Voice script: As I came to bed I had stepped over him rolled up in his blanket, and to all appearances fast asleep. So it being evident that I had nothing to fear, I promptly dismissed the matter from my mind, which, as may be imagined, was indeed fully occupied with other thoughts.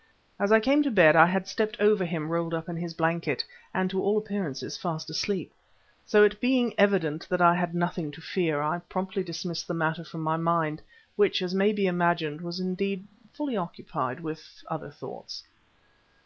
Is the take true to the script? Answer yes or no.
yes